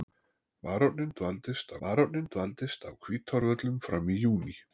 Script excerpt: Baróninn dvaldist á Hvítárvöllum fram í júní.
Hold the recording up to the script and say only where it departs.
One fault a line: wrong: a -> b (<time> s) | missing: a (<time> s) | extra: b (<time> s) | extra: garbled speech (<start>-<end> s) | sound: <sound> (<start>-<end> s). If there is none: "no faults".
extra: baróninn dvaldist (1.8 s)